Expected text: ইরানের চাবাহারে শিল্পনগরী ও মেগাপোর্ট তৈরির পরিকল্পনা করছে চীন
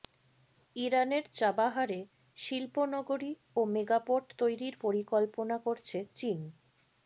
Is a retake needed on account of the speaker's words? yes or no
no